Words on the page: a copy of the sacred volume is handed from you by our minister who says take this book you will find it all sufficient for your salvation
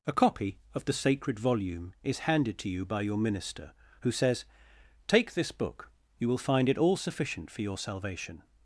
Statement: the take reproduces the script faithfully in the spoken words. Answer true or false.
false